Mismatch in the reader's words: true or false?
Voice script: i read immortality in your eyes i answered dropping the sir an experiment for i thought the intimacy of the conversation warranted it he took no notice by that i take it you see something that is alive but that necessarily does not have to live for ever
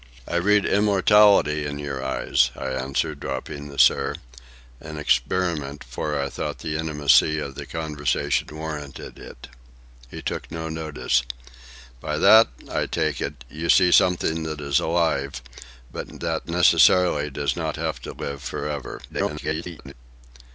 true